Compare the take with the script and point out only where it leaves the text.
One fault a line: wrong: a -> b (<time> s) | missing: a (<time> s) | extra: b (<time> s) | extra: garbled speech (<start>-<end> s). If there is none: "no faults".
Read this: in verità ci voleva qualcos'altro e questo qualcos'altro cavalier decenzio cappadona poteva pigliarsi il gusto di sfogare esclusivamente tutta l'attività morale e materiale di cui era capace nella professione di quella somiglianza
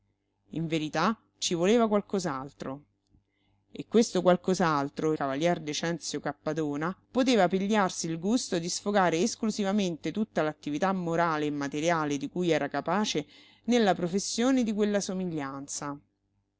no faults